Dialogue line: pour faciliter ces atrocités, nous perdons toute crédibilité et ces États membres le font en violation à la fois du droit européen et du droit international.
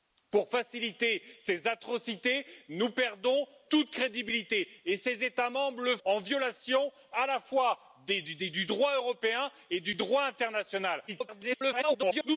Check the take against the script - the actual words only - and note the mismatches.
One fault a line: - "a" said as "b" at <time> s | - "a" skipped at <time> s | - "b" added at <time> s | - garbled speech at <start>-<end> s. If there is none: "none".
- "font" skipped at 6.0 s
- garbled speech at 11.1-12.4 s